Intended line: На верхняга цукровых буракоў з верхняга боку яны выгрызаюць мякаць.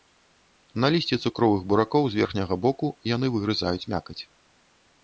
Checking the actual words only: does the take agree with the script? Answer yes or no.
no